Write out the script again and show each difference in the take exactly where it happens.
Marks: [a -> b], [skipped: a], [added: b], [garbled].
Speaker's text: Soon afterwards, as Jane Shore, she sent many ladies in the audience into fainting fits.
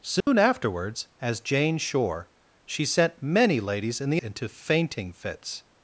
Soon afterwards, as Jane Shore, she sent many ladies in the [skipped: audience] into fainting fits.